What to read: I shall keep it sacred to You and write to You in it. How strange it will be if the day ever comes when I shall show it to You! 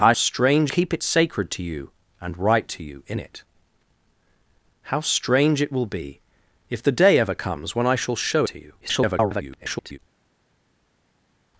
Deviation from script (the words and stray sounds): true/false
true